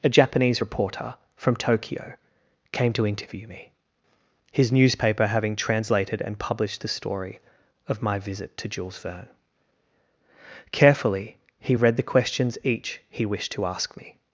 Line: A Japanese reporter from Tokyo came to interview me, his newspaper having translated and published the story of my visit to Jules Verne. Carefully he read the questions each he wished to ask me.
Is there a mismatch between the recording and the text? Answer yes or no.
no